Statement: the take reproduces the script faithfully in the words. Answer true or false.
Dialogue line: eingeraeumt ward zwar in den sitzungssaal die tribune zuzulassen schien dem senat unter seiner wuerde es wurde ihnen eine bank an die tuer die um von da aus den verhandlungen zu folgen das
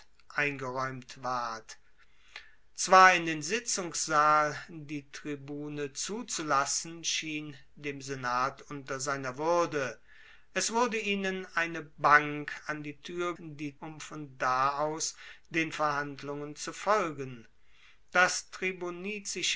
true